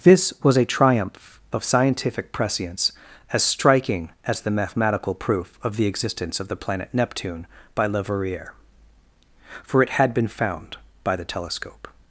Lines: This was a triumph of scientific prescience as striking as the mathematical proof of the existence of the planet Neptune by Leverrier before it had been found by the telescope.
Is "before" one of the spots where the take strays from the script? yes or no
yes